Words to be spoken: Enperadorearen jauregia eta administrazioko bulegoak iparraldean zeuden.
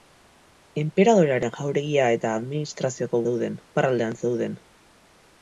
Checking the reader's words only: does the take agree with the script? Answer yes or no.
no